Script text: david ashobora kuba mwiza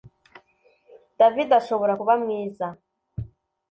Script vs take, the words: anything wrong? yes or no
no